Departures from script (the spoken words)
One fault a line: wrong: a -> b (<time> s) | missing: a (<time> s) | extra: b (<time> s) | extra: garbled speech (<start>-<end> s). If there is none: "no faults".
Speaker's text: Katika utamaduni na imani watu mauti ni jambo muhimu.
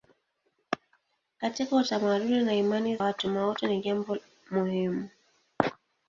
no faults